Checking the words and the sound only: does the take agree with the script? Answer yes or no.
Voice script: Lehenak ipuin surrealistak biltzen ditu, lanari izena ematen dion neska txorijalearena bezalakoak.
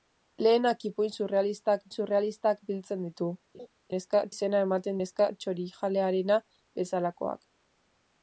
no